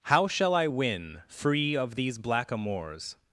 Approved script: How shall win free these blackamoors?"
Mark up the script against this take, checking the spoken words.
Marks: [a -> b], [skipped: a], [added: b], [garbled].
How shall [added: I] win free [added: of] these blackamoors?"